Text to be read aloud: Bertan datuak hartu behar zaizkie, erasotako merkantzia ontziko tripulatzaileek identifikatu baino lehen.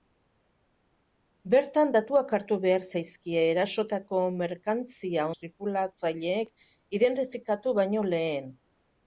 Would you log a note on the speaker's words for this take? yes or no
yes